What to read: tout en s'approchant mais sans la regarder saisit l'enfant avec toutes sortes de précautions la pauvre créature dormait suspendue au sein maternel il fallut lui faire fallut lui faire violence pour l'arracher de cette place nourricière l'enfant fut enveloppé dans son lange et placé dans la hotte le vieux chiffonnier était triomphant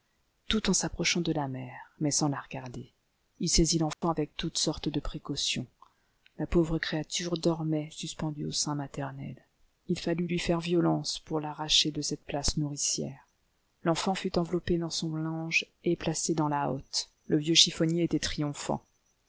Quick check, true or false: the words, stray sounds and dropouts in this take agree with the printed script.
false